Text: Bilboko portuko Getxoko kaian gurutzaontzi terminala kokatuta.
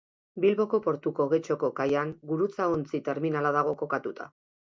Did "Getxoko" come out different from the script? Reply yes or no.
no